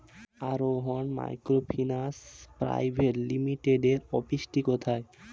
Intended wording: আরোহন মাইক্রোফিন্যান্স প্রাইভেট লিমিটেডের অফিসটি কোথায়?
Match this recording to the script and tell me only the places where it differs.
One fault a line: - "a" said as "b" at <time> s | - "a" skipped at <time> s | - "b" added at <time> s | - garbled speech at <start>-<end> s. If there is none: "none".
none